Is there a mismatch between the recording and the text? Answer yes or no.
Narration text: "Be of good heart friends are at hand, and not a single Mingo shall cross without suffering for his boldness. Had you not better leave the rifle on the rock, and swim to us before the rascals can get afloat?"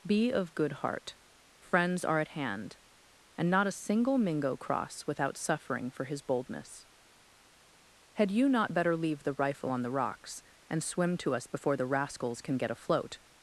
yes